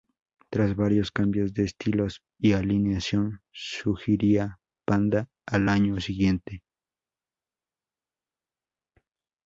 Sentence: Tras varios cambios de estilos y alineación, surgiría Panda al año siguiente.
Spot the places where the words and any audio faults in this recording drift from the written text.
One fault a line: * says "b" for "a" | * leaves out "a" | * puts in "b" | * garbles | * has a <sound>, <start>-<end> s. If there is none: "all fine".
all fine